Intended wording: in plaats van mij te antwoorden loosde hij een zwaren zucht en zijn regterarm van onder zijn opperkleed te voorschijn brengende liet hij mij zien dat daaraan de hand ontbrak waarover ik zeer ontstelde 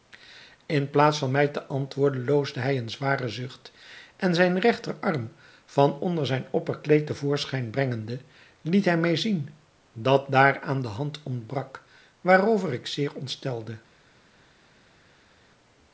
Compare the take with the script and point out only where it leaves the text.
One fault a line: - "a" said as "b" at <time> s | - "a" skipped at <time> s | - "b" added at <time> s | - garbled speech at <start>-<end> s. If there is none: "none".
none